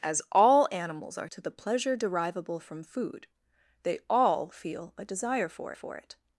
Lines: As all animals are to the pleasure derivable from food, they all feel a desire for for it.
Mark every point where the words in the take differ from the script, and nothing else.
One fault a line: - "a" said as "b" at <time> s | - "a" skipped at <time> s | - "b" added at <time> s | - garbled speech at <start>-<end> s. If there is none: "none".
none